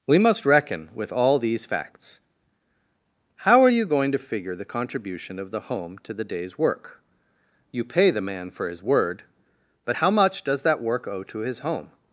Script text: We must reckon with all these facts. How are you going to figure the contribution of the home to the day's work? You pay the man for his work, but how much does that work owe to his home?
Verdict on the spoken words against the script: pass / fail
fail